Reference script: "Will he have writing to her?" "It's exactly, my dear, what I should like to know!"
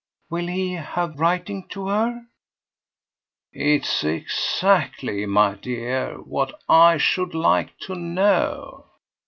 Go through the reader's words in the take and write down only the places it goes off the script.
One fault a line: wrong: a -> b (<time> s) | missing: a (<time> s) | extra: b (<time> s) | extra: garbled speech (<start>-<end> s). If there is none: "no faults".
no faults